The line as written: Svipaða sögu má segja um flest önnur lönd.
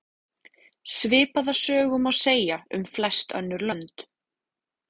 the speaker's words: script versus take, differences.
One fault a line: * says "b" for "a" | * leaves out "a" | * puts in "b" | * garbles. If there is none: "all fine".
all fine